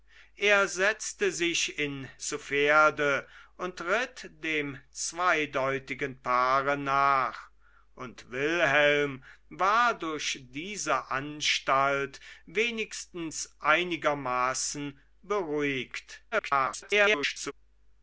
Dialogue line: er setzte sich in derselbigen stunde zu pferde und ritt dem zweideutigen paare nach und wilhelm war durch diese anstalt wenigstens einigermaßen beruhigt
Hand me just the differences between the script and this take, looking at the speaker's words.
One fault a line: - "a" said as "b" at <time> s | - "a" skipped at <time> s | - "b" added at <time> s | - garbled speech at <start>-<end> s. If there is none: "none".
- "derselbigen stunde" skipped at 2.1 s
- garbled speech at 16.3-17.5 s